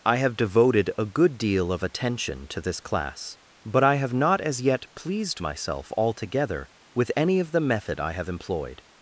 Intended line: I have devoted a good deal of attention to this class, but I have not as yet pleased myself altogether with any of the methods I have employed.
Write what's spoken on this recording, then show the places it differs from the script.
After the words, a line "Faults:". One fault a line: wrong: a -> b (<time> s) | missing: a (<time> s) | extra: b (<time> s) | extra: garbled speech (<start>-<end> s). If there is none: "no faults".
I have devoted a good deal of attention to this class, but I have not as yet pleased myself altogether with any of the method I have employed.
Faults:
wrong: methods -> method (7.6 s)